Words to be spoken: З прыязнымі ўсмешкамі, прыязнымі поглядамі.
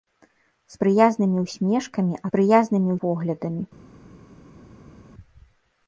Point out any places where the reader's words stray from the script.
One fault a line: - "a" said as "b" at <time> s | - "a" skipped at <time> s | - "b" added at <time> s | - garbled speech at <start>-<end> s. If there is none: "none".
none